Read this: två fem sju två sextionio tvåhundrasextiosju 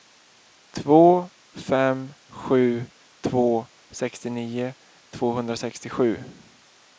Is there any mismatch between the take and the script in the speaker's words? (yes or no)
no